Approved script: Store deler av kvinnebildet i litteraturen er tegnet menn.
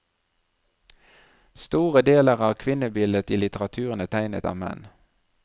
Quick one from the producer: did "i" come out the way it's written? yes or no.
yes